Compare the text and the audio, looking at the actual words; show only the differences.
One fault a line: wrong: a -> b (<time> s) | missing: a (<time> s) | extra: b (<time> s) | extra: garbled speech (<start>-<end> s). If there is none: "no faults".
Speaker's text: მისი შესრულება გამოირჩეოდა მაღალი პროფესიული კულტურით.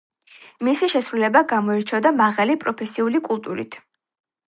no faults